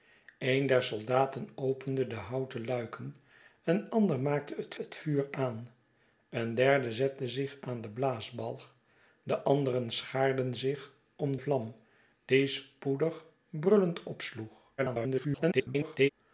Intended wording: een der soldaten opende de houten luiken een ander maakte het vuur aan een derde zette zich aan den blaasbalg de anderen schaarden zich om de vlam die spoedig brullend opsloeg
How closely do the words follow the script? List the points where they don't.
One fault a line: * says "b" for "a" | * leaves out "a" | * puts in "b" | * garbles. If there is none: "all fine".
* puts in "het"
* leaves out "de"
* garbles